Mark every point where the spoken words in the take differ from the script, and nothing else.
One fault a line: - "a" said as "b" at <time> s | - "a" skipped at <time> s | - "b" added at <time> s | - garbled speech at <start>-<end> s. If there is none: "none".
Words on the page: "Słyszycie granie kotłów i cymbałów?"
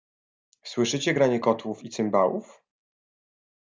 none